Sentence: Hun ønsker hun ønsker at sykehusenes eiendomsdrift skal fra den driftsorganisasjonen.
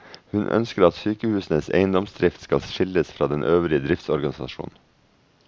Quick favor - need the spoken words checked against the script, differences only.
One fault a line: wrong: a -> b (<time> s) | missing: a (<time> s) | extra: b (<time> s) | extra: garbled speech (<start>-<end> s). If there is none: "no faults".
missing: hun ønsker (0.8 s)
extra: skilles (2.6 s)
extra: øvrige (3.4 s)